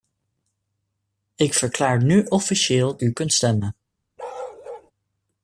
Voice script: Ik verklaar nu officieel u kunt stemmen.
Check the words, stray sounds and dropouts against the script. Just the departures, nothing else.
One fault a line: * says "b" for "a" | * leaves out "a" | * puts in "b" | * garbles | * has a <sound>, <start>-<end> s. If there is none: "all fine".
* has a bark, 4.2-4.9 s